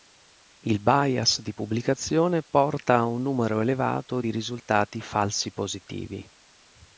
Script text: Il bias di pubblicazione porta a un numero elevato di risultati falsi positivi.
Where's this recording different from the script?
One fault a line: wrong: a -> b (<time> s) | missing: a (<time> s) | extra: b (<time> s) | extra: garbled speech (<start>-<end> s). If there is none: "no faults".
no faults